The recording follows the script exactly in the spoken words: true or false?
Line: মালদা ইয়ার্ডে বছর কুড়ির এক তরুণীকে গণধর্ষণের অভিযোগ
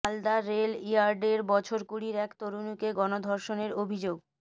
false